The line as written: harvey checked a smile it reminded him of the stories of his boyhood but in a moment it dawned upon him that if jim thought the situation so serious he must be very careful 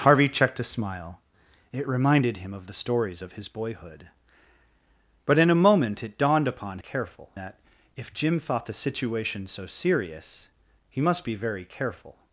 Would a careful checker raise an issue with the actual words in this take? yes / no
yes